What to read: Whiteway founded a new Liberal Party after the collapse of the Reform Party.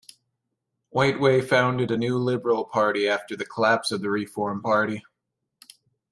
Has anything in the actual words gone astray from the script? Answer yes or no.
no